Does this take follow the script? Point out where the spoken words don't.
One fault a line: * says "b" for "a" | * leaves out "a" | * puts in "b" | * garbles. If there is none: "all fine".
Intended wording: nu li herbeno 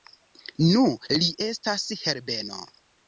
* puts in "estas"